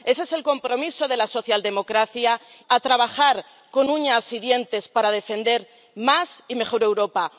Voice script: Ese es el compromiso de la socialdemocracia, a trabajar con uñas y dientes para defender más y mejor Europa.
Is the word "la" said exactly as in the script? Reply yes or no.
yes